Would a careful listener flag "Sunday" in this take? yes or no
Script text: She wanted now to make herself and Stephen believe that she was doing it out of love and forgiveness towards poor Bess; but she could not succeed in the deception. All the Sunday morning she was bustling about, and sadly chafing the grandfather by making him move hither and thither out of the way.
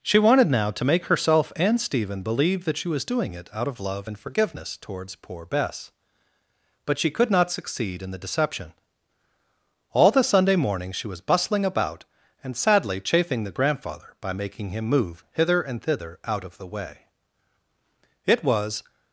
no